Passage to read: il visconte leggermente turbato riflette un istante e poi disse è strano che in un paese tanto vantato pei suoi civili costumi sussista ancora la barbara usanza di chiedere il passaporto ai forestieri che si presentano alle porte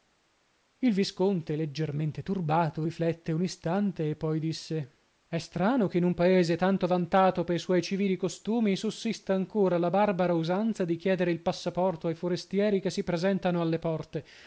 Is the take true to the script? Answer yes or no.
yes